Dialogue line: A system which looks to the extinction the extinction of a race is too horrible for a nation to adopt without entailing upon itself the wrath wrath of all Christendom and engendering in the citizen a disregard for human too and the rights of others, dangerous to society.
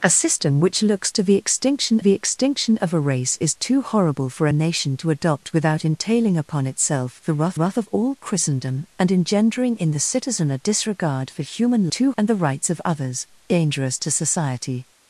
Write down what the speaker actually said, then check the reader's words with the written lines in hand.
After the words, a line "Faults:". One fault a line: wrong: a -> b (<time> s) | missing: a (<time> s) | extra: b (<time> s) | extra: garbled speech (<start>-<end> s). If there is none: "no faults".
A system which looks to the extinction the extinction of a race is too horrible for a nation to adopt without entailing upon itself the wrath wrath of all Christendom and engendering in the citizen a disregard for human too and the rights of others, dangerous to society.
Faults:
no faults